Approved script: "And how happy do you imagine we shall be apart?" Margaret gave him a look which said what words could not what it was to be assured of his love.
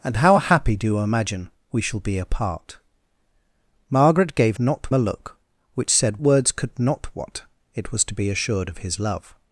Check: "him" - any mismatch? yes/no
yes